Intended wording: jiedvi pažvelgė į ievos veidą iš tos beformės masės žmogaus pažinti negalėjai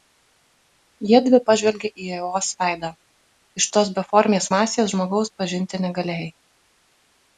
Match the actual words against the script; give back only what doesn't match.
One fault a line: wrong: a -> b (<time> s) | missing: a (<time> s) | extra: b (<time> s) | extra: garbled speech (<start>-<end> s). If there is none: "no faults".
no faults